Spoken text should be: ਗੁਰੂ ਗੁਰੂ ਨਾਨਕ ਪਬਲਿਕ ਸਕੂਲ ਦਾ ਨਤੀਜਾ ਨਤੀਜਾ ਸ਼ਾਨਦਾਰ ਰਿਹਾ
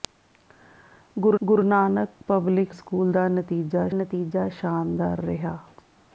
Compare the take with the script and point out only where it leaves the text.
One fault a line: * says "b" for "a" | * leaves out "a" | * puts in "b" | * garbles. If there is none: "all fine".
all fine